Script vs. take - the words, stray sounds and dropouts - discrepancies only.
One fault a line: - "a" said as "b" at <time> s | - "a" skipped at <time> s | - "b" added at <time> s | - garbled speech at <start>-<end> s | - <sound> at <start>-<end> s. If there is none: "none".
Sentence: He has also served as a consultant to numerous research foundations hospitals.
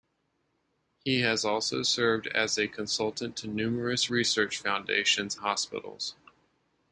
none